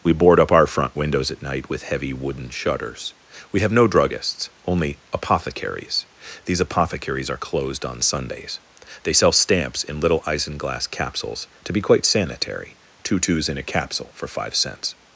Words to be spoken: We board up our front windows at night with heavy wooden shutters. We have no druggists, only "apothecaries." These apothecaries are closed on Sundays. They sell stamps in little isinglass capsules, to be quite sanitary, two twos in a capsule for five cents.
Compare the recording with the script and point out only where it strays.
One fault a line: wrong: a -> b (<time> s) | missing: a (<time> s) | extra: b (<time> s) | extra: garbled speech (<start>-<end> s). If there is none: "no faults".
no faults